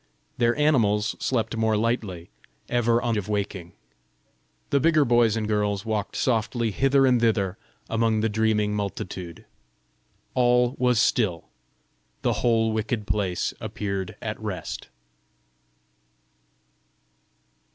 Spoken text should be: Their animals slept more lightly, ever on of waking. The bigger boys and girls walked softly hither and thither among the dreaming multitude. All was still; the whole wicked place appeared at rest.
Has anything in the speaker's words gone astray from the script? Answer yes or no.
no